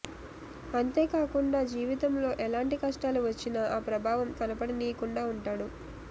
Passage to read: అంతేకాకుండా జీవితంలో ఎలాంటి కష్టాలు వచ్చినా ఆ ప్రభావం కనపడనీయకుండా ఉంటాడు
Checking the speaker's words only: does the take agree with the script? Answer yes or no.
yes